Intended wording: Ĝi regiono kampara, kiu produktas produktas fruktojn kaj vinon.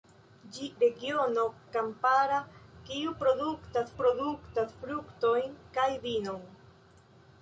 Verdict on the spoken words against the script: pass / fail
pass